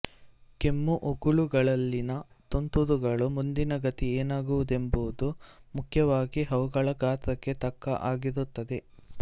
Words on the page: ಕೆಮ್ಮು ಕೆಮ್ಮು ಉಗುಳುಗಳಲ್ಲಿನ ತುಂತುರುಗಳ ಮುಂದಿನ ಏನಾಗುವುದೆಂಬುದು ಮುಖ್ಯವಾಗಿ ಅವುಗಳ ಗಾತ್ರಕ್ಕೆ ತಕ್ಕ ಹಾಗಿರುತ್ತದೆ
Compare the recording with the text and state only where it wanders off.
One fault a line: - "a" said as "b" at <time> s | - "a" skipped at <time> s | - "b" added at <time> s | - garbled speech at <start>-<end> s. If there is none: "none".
- "ಕೆಮ್ಮು" skipped at 0.9 s
- "ಗತಿ" added at 3.9 s